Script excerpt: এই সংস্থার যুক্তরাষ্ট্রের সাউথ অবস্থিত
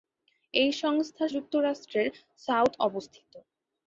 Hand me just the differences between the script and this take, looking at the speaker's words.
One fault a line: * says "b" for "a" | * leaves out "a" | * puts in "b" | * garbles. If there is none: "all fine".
all fine